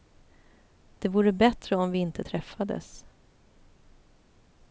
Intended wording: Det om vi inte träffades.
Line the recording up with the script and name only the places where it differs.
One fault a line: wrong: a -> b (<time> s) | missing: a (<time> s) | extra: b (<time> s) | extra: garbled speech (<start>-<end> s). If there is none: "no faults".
extra: vore bättre (1.1 s)